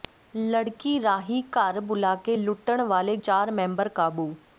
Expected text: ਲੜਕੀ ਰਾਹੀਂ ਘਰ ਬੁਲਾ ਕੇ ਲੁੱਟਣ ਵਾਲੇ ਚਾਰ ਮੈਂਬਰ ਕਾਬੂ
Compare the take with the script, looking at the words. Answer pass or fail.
pass